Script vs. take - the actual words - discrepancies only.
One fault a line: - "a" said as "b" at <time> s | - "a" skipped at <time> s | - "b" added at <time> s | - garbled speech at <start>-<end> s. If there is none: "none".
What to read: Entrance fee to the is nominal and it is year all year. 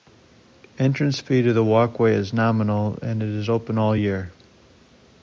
- "walkway" added at 1.6 s
- "year" said as "open" at 3.5 s